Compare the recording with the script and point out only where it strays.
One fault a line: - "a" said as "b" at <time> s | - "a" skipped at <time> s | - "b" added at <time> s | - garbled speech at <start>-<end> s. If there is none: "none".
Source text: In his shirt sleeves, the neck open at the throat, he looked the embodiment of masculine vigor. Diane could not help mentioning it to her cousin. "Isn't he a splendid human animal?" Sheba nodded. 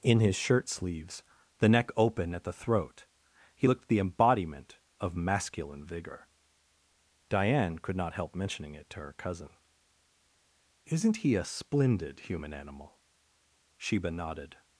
none